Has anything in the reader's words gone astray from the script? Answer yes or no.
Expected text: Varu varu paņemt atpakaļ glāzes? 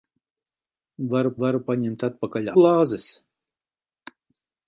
no